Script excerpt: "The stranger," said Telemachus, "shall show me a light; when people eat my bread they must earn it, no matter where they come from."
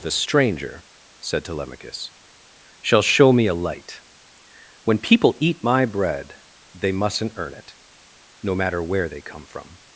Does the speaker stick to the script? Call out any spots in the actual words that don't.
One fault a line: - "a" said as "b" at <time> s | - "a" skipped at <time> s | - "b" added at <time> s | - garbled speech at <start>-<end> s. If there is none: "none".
- "must" said as "mustn't" at 6.9 s